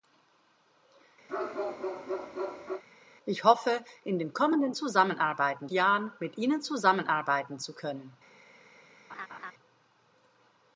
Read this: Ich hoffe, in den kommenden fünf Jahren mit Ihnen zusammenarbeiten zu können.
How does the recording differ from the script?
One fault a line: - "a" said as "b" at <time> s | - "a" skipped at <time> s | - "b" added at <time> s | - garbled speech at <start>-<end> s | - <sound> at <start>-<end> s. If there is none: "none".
- bark at 1.3-2.8 s
- "fünf" said as "zusammenarbeiten" at 4.7 s
- laugh at 9.1-9.5 s